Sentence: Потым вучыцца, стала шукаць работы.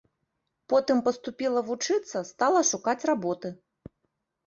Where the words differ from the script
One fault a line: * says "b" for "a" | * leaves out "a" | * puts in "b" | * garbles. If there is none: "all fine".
* puts in "паступіла"